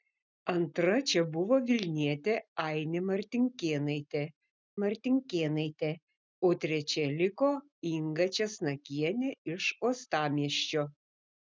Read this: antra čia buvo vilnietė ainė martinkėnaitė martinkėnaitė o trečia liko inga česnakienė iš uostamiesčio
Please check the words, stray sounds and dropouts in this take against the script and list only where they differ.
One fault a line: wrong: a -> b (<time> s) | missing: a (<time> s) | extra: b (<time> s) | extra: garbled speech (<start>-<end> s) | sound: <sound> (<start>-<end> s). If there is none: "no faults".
no faults